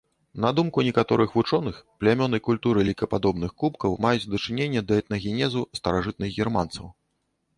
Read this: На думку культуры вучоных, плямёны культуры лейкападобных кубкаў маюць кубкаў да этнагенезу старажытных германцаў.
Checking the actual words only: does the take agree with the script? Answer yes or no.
no